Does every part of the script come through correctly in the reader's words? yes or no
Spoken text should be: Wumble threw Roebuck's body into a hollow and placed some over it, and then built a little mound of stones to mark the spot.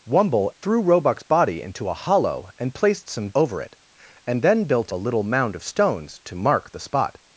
yes